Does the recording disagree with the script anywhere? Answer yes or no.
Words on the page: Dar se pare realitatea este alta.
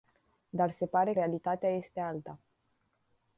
no